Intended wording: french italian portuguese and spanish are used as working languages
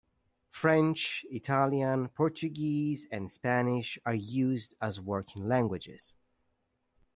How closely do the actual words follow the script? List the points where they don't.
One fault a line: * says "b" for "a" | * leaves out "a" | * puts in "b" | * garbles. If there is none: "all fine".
all fine